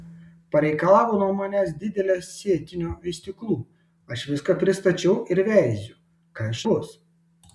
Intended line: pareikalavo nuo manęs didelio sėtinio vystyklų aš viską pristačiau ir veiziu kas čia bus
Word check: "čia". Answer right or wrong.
wrong